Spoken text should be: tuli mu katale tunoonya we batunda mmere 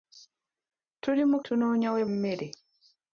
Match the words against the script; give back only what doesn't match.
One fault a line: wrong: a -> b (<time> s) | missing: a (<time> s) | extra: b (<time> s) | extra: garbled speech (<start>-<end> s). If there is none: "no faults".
missing: katale (1.4 s)
missing: batunda (2.0 s)